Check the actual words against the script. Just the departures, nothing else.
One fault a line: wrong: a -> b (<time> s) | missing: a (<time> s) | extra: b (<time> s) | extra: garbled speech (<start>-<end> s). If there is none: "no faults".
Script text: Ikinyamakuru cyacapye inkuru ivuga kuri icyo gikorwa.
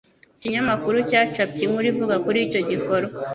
no faults